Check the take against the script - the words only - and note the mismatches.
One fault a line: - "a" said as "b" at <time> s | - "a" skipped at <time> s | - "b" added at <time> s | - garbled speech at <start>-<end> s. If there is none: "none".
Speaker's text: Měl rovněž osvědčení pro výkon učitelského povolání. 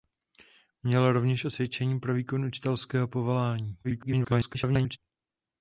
- garbled speech at 3.8-5.0 s